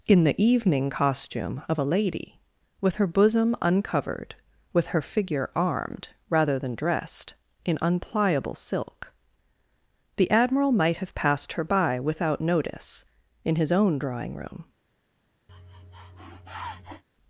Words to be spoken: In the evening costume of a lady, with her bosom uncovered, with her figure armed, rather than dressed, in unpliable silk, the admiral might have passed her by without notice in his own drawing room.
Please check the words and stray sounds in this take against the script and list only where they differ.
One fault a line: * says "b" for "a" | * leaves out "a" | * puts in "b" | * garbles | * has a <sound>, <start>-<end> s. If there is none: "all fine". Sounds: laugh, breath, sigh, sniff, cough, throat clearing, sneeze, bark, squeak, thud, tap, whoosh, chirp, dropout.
* has a sniff, 15.5-17.0 s